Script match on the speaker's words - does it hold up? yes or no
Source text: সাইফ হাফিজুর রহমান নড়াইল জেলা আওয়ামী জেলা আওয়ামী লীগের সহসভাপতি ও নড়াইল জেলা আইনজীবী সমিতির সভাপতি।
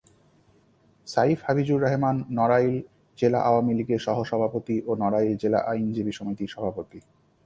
no